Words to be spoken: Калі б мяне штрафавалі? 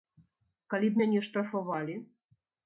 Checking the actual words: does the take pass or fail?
pass